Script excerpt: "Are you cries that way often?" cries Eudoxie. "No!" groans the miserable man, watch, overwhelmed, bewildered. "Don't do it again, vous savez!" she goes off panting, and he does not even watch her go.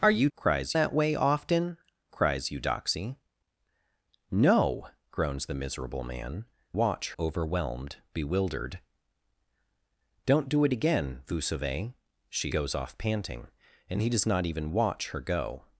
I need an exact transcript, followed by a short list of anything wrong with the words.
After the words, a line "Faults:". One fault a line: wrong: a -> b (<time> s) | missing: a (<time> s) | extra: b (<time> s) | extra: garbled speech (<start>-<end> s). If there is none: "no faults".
"Are you cries that way often?" cries Eudoxie. "No!" groans the miserable man, watch, overwhelmed, bewildered. "Don't do it again, vous savez!" she goes off panting, and he does not even watch her go.
Faults:
no faults